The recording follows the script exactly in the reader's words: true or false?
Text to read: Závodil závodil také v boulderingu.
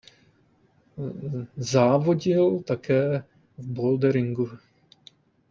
false